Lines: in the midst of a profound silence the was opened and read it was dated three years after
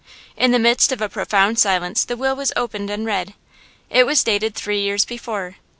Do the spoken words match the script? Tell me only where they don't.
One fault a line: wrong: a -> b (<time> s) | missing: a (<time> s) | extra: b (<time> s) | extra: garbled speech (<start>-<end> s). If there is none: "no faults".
extra: will (2.2 s)
wrong: after -> before (5.0 s)